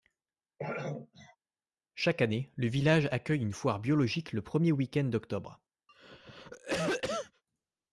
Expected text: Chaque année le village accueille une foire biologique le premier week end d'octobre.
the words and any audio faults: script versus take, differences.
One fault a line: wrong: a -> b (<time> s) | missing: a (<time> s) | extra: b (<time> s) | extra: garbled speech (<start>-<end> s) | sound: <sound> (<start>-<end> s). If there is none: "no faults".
sound: throat clearing (0.6-1.4 s)
sound: cough (5.9-7.4 s)